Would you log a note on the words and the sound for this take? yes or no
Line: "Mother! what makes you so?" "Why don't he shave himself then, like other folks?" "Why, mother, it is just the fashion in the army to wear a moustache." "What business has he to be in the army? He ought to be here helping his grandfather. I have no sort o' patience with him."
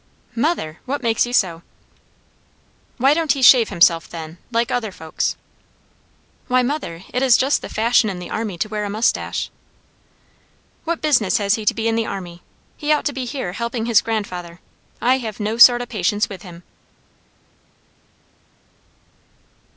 no